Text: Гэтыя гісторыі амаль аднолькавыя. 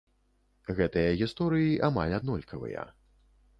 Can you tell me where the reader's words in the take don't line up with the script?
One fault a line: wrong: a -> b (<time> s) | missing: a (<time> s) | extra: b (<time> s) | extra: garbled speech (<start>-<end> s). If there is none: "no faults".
no faults